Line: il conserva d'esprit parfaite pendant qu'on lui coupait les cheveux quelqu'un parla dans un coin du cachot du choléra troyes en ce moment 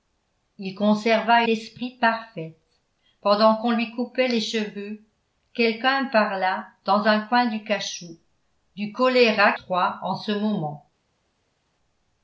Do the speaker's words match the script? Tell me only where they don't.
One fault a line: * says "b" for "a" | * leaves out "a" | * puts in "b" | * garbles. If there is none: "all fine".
all fine